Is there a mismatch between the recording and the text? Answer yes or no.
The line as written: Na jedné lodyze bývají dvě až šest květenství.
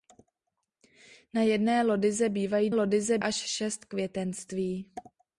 yes